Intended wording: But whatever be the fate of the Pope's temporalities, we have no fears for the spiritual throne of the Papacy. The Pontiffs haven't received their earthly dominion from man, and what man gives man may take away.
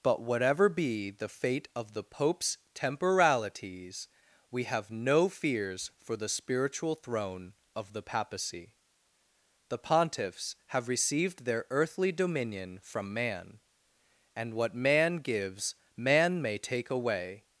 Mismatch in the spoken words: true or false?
true